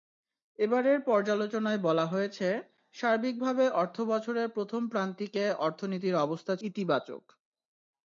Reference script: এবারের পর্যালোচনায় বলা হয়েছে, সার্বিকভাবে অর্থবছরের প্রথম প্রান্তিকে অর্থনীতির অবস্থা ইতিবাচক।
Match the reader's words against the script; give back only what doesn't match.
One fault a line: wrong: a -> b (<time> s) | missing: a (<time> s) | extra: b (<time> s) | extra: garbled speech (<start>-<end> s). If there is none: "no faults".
no faults